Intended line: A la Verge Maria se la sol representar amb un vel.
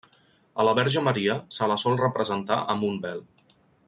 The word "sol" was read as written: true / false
true